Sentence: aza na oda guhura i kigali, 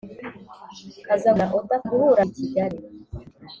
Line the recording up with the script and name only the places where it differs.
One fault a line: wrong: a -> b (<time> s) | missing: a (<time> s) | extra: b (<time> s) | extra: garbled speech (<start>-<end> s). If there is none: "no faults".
no faults